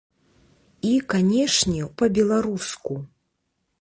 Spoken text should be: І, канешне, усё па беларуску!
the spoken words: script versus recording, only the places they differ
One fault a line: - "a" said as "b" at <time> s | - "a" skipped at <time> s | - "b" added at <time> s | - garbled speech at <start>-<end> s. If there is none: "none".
- "усё" skipped at 1.8 s